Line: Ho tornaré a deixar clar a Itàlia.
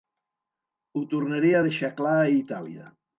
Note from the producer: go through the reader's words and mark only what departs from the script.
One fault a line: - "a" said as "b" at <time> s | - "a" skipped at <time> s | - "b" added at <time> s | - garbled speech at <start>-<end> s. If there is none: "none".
none